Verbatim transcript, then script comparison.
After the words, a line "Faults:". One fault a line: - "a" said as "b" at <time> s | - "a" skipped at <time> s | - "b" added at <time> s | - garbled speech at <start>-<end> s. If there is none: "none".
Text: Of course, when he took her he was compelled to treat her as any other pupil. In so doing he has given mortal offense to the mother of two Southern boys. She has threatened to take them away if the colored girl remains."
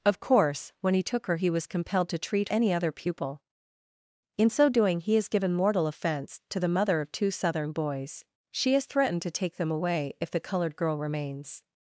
Of course, when he took her he was compelled to treat any other pupil. In so doing he has given mortal offense to the mother of two Southern boys. She has threatened to take them away if the colored girl remains."
Faults:
- "her as" skipped at 2.5 s